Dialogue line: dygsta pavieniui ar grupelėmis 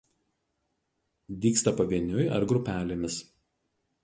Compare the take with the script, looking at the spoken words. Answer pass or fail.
pass